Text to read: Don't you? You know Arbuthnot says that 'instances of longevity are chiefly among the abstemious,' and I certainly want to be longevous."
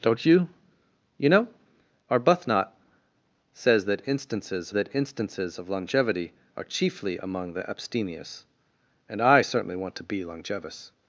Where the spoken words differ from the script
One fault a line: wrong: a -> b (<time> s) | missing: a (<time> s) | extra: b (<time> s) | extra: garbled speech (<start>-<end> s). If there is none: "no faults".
extra: that instances (4.7 s)